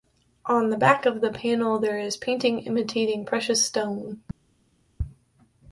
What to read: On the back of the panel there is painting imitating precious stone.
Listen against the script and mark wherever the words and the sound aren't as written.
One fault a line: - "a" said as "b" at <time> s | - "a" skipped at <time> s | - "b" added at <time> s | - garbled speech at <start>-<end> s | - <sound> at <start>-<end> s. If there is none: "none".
none